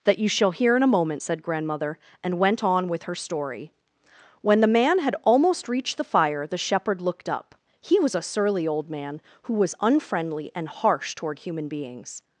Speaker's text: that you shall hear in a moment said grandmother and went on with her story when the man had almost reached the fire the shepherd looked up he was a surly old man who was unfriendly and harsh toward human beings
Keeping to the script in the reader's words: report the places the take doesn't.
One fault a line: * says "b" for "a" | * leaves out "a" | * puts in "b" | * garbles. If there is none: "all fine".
all fine